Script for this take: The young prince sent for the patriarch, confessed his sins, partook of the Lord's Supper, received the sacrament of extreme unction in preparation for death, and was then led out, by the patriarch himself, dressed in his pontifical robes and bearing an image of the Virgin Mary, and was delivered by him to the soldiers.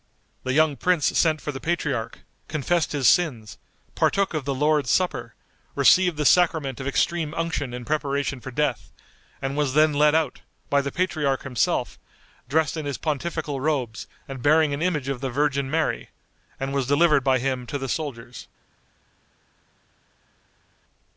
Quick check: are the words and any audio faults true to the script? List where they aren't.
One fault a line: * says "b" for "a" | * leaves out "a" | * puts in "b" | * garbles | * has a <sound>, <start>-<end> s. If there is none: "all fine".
all fine